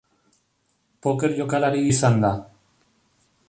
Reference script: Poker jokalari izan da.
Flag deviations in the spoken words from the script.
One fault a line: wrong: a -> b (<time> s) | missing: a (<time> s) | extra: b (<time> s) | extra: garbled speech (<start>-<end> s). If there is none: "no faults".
no faults